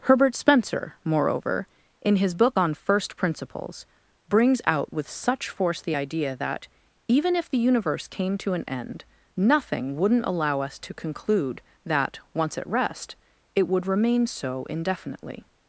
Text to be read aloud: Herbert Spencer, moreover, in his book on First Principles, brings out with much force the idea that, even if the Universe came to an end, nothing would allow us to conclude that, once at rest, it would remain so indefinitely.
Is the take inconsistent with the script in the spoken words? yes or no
yes